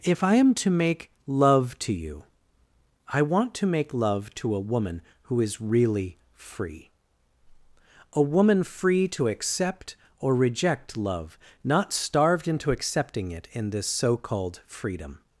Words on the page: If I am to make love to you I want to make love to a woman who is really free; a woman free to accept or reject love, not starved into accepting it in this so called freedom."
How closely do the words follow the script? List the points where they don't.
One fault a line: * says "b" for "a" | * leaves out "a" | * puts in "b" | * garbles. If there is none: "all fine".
all fine